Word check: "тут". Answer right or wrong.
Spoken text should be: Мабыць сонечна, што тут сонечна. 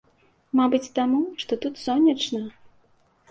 right